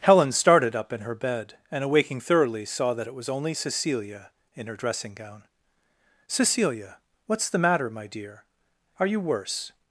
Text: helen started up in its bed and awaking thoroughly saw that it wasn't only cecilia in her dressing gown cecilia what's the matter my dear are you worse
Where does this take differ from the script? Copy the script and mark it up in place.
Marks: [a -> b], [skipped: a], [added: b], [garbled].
helen started up in [its -> her] bed and awaking thoroughly saw that it [wasn't -> was] only cecilia in her dressing gown cecilia what's the matter my dear are you worse